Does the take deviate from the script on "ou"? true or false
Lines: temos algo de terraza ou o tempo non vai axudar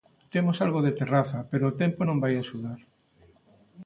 true